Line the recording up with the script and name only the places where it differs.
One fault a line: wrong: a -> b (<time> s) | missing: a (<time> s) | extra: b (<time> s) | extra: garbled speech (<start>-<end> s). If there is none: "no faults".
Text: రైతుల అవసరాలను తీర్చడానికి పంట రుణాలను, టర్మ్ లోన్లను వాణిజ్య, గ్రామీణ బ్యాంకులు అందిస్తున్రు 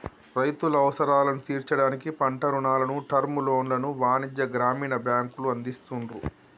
no faults